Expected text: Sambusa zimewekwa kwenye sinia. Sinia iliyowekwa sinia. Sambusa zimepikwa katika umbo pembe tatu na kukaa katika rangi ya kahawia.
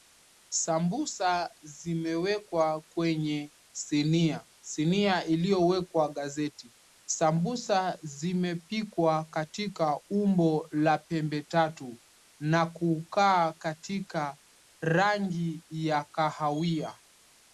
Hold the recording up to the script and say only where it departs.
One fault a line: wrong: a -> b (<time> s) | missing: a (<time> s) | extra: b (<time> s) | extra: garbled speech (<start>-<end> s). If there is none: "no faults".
wrong: sinia -> gazeti (6.1 s)
extra: la (10.7 s)